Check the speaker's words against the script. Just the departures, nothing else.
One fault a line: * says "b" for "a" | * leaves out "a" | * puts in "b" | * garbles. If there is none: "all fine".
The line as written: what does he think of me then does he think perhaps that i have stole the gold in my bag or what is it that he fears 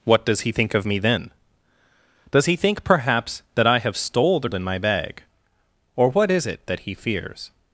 * leaves out "gold"